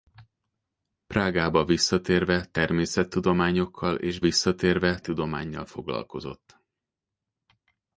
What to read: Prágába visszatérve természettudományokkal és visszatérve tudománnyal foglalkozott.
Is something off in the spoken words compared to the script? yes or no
no